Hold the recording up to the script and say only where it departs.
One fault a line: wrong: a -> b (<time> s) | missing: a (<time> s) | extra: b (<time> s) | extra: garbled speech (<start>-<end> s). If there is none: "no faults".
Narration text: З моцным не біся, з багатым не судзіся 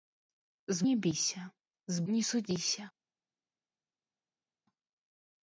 missing: моцным (0.9 s)
missing: багатым (2.0 s)